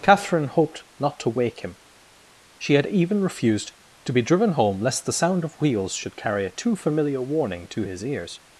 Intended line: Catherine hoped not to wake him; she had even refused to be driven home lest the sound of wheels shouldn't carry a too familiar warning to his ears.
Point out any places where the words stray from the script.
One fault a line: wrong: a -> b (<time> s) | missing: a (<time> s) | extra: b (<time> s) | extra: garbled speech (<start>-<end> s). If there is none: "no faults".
wrong: shouldn't -> should (5.9 s)